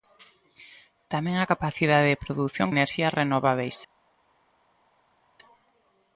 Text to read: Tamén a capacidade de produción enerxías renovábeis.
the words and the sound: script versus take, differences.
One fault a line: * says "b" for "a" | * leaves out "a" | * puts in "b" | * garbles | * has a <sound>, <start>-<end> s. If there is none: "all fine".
all fine